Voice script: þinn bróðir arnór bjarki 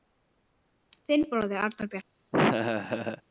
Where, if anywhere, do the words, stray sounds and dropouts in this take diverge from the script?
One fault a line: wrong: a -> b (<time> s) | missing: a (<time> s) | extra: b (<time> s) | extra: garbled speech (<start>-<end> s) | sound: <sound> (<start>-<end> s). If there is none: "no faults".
sound: laugh (2.3-3.2 s)